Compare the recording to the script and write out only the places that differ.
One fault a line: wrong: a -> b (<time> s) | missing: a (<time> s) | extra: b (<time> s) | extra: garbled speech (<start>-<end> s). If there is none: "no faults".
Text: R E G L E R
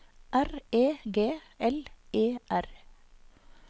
no faults